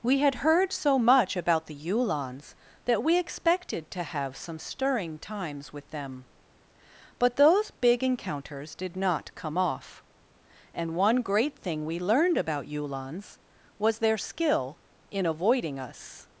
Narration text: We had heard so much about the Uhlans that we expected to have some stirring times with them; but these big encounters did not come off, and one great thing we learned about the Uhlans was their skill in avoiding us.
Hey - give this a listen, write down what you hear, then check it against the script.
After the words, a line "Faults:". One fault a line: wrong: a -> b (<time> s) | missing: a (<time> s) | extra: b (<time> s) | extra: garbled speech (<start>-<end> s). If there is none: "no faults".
We had heard so much about the Uhlans that we expected to have some stirring times with them; but those big encounters did not come off, and one great thing we learned about Uhlans was their skill in avoiding us.
Faults:
wrong: these -> those (7.3 s)
missing: the (12.7 s)